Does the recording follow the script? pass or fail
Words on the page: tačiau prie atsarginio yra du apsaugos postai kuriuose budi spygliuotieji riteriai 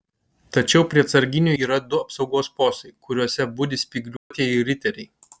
pass